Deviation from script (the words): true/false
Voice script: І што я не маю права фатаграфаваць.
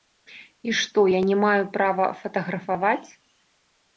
false